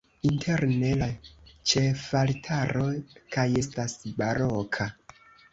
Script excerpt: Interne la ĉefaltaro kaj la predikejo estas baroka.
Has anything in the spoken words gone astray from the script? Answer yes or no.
yes